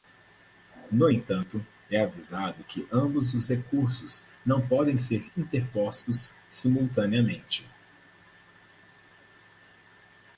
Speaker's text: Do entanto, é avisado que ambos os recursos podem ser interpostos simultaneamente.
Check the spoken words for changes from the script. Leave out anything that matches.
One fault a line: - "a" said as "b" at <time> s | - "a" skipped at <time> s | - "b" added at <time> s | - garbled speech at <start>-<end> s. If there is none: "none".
- "Do" said as "No" at 0.9 s
- "não" added at 4.4 s